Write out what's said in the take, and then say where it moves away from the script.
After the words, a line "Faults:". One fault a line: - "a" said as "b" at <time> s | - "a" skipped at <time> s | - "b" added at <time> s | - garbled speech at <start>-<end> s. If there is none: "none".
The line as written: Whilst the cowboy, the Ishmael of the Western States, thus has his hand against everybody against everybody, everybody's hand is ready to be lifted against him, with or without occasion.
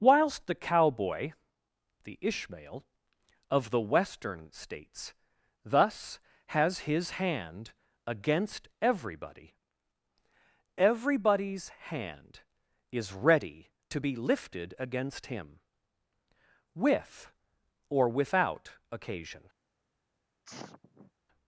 Whilst the cowboy, the Ishmael of the Western States, thus has his hand against everybody, everybody's hand is ready to be lifted against him, with or without occasion.
Faults:
- "against everybody" skipped at 9.6 s